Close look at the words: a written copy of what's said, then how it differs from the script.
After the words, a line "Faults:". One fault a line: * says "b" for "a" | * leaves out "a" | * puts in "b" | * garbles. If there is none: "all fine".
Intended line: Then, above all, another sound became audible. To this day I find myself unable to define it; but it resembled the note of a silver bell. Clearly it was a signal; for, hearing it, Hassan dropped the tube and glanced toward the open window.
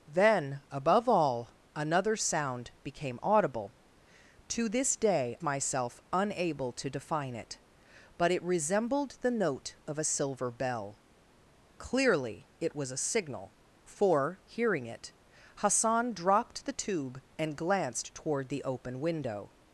Then, above all, another sound became audible. To this day myself unable to define it; but it resembled the note of a silver bell. Clearly it was a signal; for, hearing it, Hassan dropped the tube and glanced toward the open window.
Faults:
* leaves out "I find"